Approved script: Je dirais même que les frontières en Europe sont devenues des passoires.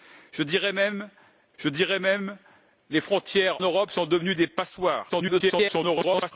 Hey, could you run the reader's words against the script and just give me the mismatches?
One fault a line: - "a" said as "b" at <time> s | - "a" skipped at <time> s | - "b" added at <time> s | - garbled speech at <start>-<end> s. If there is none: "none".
- "je dirais même" added at 1.6 s
- "en" skipped at 3.6 s
- garbled speech at 5.1-6.3 s